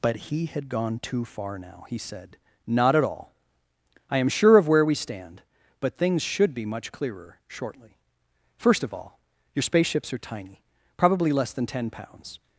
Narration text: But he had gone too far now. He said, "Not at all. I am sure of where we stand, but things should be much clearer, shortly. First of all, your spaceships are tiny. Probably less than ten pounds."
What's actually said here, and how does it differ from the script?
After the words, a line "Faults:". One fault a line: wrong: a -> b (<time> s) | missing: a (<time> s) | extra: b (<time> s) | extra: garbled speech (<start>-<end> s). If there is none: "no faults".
But he had gone too far now. He said, "Not at all. I am sure of where we stand, but things should be much clearer, shortly. First of all, your spaceships are tiny. Probably less than ten pounds."
Faults:
no faults